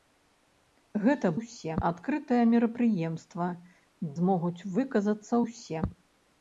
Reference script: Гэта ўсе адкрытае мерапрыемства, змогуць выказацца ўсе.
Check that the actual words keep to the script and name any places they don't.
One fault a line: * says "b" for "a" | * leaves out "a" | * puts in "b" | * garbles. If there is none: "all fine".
all fine